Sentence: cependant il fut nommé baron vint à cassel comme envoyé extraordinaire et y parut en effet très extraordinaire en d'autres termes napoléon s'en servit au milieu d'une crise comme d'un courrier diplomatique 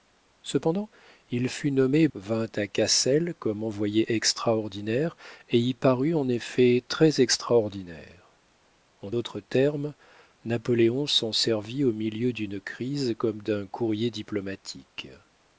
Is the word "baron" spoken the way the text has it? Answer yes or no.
no